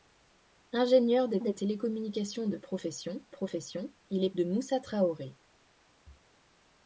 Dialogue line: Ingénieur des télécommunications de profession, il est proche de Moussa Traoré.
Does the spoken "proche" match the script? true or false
false